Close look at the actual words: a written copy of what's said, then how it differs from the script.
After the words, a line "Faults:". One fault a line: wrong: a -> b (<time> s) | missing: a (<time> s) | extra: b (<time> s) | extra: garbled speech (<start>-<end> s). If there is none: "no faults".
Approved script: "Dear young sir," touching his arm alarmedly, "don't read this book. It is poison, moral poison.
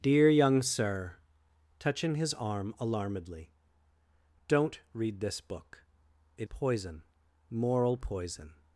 "Dear young sir," touching his arm alarmedly, "don't read this book. It poison, moral poison.
Faults:
missing: is (6.5 s)